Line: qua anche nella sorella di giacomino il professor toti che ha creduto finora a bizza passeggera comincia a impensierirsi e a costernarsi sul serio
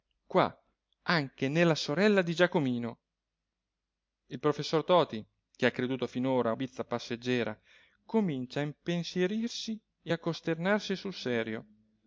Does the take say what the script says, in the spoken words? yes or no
yes